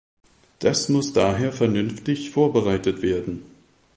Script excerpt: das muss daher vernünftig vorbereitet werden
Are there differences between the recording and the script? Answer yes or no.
no